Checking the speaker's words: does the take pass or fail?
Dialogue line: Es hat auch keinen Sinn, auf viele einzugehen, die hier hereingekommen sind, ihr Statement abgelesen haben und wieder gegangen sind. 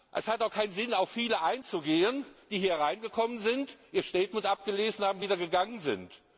pass